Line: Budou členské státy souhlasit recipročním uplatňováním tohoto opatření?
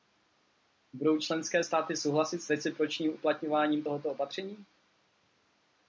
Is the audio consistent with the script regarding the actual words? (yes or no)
no